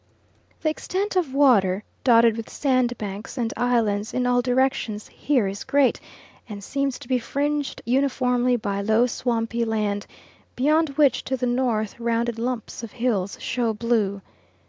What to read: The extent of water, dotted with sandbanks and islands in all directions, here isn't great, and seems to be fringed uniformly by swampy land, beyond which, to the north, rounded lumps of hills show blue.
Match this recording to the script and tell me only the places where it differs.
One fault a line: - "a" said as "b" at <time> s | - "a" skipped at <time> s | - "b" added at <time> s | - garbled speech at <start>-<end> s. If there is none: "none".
- "isn't" said as "is" at 5.5 s
- "low" added at 8.8 s